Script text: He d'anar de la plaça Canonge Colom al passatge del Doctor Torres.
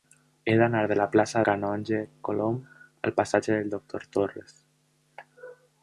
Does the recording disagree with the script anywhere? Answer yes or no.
no